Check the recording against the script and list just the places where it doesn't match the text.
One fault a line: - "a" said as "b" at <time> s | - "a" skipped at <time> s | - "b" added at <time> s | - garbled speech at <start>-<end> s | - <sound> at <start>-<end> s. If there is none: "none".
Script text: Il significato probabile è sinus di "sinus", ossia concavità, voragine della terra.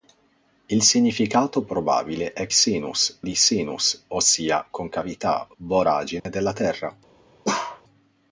- dropout at 6.2-6.3 s
- bark at 7.4-7.8 s